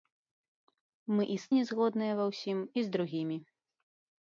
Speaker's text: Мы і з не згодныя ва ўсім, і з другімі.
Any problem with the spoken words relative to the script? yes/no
no